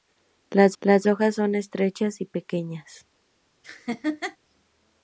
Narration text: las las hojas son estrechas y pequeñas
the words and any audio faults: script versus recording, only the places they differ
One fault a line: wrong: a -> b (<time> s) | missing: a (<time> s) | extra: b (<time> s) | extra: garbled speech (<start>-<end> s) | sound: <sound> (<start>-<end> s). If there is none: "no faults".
sound: laugh (3.6-4.4 s)